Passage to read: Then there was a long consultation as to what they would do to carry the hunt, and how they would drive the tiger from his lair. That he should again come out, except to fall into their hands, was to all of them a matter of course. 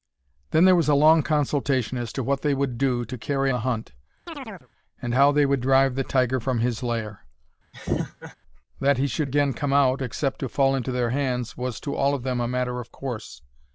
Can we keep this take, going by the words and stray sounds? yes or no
no